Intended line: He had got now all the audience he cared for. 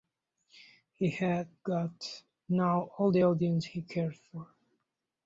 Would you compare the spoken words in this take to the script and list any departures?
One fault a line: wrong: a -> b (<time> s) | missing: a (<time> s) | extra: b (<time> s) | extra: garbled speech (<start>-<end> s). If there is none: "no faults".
no faults